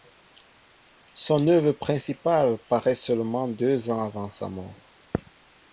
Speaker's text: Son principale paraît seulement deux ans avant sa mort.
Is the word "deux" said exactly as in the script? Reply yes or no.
yes